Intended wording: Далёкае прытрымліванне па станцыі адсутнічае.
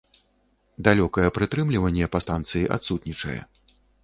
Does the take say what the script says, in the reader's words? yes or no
yes